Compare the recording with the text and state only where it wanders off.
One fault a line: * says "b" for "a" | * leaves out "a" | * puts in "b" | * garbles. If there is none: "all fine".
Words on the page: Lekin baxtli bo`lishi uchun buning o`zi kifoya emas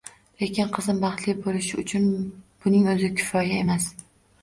* puts in "qizim"